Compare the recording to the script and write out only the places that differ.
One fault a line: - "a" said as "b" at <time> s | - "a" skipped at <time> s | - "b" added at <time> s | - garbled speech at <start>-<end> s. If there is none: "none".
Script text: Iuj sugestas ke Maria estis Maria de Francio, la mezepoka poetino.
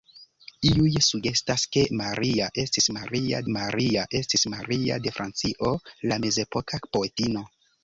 - "Maria estis Maria" added at 3.5 s